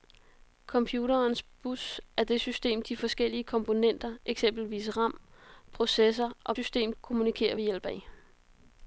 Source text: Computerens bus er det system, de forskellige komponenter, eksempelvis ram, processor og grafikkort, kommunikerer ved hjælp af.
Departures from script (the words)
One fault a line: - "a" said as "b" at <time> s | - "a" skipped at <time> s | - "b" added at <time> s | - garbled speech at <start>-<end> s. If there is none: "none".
- "grafikkort" said as "system" at 6.5 s